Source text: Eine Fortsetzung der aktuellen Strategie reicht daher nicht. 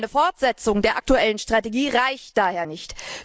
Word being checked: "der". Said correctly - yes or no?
yes